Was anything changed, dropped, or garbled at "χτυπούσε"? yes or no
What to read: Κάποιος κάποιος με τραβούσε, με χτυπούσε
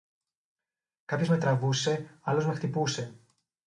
no